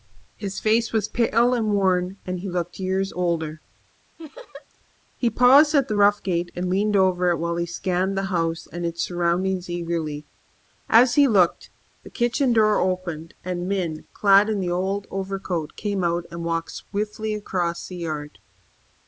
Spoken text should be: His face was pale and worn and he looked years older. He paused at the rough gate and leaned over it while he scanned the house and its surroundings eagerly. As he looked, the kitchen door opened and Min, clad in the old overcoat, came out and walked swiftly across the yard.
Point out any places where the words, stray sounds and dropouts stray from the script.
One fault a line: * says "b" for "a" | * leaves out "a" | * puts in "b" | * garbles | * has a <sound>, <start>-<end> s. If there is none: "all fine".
* has a laugh, 4.2-4.7 s